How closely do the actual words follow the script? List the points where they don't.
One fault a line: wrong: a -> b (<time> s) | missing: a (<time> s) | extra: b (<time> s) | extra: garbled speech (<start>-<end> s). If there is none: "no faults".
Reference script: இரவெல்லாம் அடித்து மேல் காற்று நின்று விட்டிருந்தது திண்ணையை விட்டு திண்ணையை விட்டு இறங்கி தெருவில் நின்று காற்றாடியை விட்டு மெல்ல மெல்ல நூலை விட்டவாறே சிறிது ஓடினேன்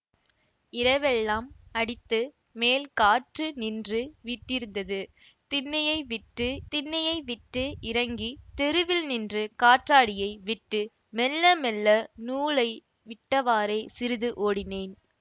no faults